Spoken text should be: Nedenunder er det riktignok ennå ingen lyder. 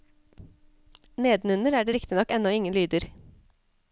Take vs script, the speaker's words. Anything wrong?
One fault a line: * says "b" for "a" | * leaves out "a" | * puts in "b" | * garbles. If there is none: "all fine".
all fine